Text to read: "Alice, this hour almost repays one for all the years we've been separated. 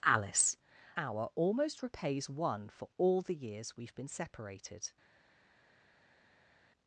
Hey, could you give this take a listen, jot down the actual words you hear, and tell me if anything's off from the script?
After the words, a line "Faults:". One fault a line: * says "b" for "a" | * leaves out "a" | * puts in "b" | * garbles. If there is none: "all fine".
"Alice, hour almost repays one for all the years we've been separated.
Faults:
* leaves out "this"